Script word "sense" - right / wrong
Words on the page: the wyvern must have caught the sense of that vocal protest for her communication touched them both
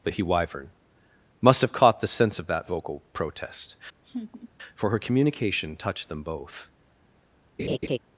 right